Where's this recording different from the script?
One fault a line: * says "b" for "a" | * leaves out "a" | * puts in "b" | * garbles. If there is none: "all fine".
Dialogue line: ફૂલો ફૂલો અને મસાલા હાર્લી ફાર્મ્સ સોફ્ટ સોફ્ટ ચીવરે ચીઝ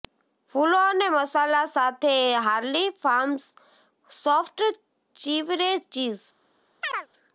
* leaves out "ફૂલો"
* puts in "સાથે"
* leaves out "સોફ્ટ"